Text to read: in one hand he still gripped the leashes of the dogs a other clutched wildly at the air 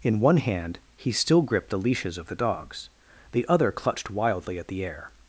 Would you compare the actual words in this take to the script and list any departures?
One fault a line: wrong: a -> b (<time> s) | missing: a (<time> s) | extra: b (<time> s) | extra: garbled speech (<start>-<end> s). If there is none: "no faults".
wrong: a -> the (3.3 s)